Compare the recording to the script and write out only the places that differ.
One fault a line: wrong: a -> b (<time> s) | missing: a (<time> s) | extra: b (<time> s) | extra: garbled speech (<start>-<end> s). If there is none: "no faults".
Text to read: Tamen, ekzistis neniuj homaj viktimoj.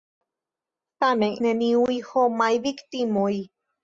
missing: ekzistis (1.4 s)